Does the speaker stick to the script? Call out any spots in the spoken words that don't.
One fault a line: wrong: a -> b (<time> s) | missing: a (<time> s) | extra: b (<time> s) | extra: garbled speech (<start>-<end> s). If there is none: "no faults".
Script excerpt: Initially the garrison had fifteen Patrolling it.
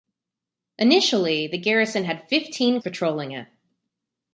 no faults